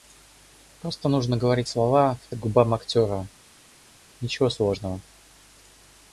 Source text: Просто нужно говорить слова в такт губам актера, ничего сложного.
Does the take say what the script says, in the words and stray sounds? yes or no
no